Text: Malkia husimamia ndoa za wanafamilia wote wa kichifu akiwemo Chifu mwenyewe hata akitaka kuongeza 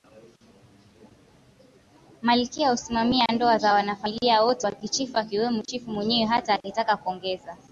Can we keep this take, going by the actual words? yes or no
yes